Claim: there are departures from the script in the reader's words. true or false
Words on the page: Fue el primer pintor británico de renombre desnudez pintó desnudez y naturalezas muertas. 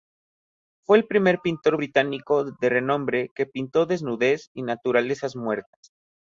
true